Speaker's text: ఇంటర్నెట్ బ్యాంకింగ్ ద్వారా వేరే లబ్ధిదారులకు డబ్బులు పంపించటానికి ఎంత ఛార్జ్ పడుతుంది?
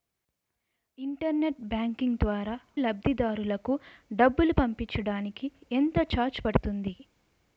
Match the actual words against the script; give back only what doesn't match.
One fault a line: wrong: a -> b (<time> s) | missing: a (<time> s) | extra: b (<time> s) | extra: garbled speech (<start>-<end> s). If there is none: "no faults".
missing: వేరే (2.5 s)